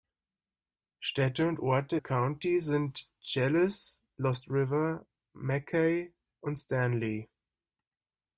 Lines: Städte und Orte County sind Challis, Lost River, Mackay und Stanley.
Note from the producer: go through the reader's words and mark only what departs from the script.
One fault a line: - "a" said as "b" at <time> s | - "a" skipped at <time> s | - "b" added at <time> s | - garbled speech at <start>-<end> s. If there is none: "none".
none